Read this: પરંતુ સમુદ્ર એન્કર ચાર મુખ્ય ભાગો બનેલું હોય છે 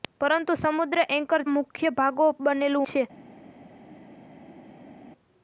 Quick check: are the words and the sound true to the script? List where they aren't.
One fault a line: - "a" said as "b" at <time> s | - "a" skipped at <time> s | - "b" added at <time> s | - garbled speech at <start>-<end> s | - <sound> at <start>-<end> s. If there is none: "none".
- "ચાર" skipped at 1.4 s
- "હોય" skipped at 2.9 s